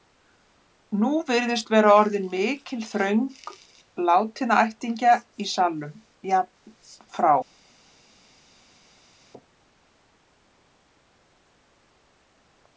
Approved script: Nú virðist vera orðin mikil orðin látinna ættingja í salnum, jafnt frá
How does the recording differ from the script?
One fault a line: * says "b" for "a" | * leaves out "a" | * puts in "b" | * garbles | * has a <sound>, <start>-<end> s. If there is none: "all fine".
* says "þröng" for "orðin"